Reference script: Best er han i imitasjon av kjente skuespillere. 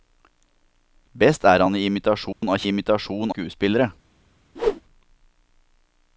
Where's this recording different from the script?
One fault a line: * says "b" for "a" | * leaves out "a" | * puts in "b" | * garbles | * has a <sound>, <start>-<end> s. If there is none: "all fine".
* has a dropout, 2.3-2.4 s
* says "imitasjon" for "kjente"
* has a whoosh, 4.6-4.8 s